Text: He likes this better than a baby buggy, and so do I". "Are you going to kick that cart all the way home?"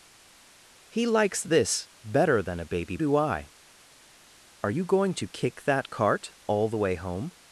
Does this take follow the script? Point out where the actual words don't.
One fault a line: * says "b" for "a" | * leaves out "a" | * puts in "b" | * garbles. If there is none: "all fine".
* leaves out "buggy and so"